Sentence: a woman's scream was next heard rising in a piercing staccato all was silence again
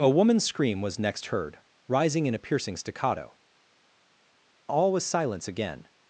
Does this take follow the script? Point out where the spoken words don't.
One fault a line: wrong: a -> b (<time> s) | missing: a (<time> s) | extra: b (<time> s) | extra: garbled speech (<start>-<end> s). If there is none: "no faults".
no faults